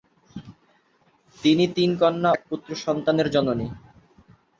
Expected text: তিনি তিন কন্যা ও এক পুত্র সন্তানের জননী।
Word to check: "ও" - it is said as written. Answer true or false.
false